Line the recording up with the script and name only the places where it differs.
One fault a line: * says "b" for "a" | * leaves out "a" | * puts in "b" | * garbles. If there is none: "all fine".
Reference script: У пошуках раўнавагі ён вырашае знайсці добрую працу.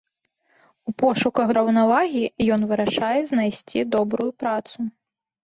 all fine